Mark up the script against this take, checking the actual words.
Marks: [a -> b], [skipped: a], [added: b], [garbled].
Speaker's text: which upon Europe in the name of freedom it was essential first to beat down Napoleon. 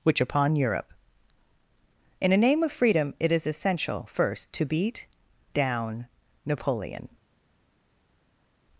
which upon Europe in [the -> a] name of freedom it [was -> is] essential first to beat down Napoleon.